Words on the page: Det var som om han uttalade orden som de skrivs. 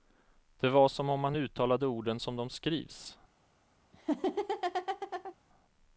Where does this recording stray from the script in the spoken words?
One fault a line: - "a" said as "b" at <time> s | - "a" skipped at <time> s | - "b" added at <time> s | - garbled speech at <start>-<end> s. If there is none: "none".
none